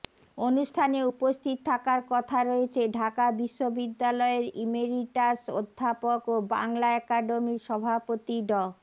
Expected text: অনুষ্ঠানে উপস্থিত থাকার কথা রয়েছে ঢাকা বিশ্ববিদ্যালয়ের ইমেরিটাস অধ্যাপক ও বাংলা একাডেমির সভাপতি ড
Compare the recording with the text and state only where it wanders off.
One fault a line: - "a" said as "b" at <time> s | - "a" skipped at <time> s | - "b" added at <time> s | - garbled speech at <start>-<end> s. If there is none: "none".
none